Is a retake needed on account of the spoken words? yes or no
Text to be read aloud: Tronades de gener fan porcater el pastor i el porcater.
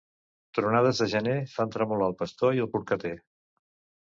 yes